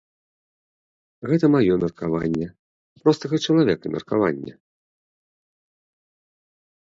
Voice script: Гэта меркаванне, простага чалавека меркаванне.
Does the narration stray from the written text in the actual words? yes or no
yes